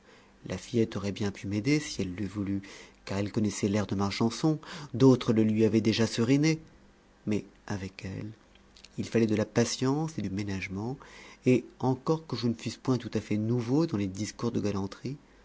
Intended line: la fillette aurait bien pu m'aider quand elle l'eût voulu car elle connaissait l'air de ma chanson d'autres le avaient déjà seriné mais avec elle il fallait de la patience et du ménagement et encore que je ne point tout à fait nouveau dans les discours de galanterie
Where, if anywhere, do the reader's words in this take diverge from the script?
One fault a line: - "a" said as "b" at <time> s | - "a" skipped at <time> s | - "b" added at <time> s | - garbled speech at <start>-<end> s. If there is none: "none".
- "quand" said as "si" at 1.8 s
- "lui" added at 5.4 s
- "fusse" added at 12.5 s